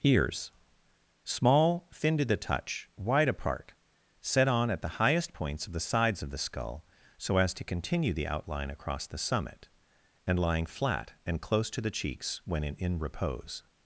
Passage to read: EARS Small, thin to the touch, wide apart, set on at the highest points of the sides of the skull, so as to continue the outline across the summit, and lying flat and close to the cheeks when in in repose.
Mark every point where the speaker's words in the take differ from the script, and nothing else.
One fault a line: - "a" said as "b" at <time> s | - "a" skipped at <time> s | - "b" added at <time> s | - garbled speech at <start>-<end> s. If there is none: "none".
none